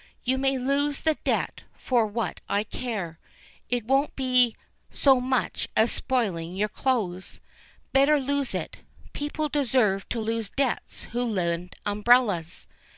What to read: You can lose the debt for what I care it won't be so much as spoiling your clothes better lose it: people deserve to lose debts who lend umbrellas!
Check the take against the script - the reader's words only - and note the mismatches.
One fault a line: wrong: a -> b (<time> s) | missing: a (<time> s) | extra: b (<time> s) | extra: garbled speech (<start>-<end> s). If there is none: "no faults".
wrong: can -> may (0.4 s)